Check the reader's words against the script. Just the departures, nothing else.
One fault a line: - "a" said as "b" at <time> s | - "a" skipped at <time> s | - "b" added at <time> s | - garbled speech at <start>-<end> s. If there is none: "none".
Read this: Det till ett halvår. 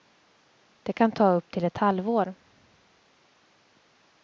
- "kan ta upp" added at 0.9 s